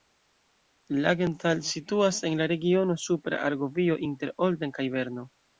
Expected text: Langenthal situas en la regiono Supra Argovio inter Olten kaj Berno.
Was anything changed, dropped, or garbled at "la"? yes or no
no